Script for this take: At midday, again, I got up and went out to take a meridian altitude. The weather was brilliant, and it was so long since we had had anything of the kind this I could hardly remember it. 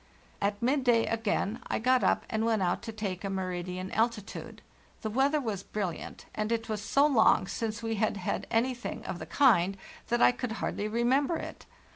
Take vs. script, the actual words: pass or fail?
fail